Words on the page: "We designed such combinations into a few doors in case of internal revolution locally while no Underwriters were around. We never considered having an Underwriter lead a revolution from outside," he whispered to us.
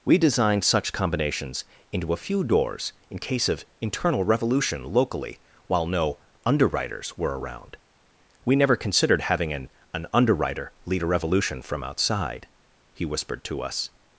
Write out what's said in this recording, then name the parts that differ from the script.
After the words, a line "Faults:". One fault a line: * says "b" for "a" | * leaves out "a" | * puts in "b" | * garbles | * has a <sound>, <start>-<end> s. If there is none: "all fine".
"We designed such combinations into a few doors in case of internal revolution locally while no Underwriters were around. We never considered having an an Underwriter lead a revolution from outside," he whispered to us.
Faults:
* puts in "an"